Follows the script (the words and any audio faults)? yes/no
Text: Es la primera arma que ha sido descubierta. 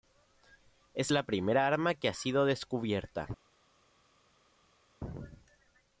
yes